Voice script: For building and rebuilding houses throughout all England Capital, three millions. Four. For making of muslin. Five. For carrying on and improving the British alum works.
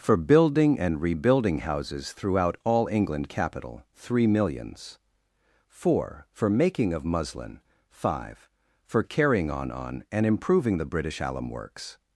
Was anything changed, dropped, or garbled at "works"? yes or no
no